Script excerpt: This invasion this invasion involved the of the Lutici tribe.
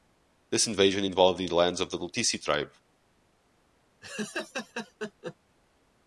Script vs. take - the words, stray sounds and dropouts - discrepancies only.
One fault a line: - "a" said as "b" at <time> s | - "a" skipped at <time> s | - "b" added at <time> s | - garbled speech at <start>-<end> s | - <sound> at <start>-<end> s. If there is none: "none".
- "this invasion" skipped at 1.1 s
- "lands" added at 1.5 s
- laugh at 4.0-5.4 s